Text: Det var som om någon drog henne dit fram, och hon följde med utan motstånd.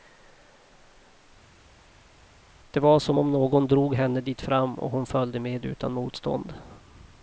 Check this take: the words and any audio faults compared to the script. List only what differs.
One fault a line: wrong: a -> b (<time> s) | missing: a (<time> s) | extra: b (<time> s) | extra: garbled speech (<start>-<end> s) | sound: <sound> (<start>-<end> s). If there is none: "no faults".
no faults